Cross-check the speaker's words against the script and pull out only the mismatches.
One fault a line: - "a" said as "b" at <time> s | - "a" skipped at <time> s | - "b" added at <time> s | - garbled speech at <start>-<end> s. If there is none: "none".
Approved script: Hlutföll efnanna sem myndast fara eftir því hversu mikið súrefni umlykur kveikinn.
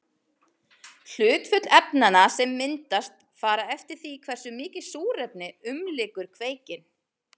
none